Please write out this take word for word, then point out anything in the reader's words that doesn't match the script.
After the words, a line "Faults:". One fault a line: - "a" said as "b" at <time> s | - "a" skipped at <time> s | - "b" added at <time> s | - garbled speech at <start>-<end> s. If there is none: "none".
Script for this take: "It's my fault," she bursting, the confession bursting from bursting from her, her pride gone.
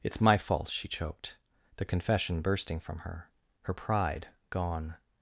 "It's my fault," she choked, the confession bursting from her, her pride gone.
Faults:
- "bursting" said as "choked" at 0.9 s
- "bursting from" skipped at 3.0 s